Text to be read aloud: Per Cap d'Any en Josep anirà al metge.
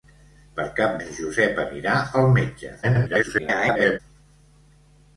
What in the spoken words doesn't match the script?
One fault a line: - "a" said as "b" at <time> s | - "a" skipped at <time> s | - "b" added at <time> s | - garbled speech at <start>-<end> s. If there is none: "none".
- "d'Any" skipped at 0.9 s
- garbled speech at 2.8-4.0 s